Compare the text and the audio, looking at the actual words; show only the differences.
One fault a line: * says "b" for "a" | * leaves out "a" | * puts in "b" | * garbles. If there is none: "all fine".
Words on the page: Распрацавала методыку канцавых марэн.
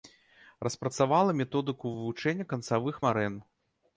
* puts in "вывучэння"